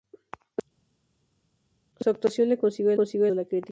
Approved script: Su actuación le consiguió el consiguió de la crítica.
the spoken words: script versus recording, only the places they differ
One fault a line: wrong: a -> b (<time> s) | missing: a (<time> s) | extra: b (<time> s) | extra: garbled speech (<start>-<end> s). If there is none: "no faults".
no faults